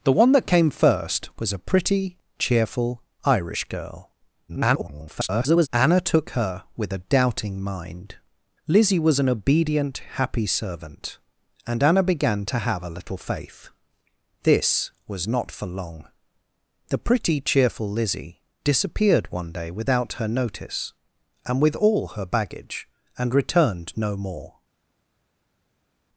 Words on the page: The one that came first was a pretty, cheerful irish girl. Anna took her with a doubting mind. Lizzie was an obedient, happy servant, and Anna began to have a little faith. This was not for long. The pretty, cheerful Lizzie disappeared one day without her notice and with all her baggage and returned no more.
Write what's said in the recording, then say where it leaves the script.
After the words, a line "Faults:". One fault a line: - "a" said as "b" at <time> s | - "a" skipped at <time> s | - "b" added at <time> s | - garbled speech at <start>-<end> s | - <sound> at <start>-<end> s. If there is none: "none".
The one that came first was a pretty, cheerful irish girl. [garbled] Anna took her with a doubting mind. Lizzie was an obedient, happy servant, and Anna began to have a little faith. This was not for long. The pretty, cheerful Lizzie disappeared one day without her notice and with all her baggage and returned no more.
Faults:
- garbled speech at 4.5-5.7 s